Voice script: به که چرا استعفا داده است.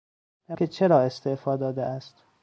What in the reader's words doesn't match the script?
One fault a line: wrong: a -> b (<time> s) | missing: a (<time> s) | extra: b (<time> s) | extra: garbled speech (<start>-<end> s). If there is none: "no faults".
no faults